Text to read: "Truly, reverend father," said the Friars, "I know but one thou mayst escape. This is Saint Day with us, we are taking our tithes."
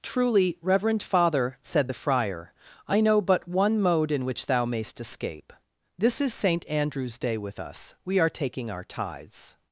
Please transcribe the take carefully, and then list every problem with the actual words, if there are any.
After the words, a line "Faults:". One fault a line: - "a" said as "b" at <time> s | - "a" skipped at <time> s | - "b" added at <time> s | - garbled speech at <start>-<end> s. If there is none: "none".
"Truly, reverend father," said the Friar, "I know but one mode in which thou mayst escape. This is Saint Andrew's day with us, we are taking our tithes."
Faults:
- "Friars" said as "Friar" at 1.9 s
- "mode in which" added at 3.8 s
- "Andrew's" added at 6.7 s